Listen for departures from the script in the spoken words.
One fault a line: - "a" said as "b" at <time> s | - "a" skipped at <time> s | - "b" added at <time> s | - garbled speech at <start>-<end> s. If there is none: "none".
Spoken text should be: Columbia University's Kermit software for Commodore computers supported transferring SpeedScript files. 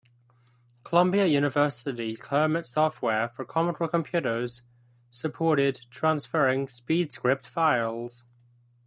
none